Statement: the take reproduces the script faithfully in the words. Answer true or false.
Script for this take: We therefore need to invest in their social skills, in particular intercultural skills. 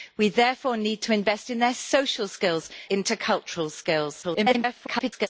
false